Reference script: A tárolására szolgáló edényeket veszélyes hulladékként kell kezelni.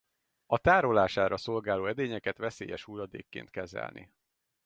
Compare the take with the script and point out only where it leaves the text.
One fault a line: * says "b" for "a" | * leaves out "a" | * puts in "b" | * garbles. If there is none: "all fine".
* leaves out "kell"